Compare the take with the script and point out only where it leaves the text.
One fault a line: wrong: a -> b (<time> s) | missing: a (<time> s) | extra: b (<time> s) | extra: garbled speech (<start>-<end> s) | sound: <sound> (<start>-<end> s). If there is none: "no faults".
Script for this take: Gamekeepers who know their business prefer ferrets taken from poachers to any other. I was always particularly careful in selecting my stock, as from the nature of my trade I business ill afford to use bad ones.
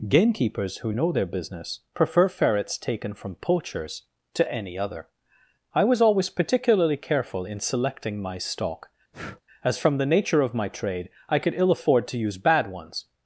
sound: breath (9.1-9.4 s)
wrong: business -> could (11.4 s)